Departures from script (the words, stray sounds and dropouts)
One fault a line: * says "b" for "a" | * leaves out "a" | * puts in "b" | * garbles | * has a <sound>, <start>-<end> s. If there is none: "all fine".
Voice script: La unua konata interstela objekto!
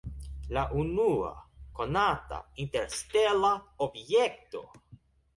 all fine